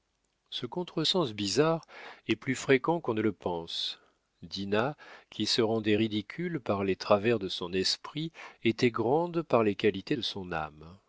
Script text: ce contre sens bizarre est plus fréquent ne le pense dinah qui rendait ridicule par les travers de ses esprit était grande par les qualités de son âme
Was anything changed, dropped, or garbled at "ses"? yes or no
yes